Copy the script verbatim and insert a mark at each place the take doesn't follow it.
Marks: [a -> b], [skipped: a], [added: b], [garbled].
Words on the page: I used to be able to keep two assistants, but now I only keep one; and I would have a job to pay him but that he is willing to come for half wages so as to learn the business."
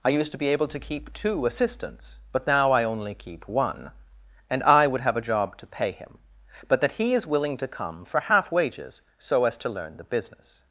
I used to be able to keep two assistants, but now I only keep one; and I would have a job to pay him but that he is willing to come for half wages so as to learn the business."